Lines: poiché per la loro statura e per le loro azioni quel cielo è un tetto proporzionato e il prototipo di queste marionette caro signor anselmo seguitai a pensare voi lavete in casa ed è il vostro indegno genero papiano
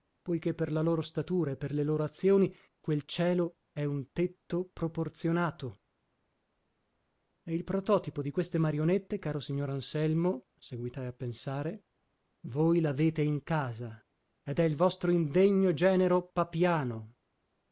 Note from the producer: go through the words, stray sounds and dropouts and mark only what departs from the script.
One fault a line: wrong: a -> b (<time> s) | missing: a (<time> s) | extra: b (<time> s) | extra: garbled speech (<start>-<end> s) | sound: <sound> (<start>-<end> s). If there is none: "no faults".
no faults